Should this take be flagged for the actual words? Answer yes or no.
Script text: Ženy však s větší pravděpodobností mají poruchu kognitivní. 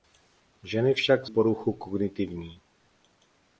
yes